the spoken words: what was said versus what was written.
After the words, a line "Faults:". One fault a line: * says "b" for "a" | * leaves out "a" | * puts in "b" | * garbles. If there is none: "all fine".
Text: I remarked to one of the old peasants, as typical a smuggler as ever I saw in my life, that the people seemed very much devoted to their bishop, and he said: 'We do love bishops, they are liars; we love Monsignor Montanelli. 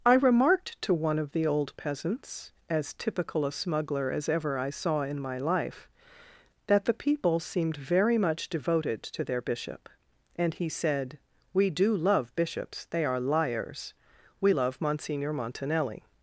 I remarked to one of the old peasants, as typical a smuggler as ever I saw in my life, that the people seemed very much devoted to their bishop, and he said: 'We do love bishops, they are liars; we love Monsignor Montanelli.
Faults:
all fine